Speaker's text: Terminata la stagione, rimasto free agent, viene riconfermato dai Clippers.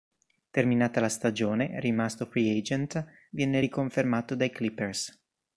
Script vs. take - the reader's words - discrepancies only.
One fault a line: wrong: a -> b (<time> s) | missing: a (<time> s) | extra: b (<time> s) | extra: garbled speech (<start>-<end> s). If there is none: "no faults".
no faults